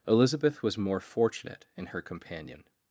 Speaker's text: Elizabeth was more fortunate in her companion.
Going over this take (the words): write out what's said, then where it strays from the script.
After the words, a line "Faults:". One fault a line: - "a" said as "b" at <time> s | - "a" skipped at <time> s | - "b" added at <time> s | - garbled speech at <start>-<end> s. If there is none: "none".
Elizabeth was more fortunate in her companion.
Faults:
none